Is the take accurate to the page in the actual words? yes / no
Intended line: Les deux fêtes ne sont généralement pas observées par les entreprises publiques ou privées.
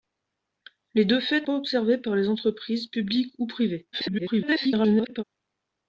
no